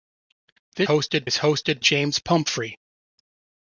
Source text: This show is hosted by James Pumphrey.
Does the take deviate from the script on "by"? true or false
true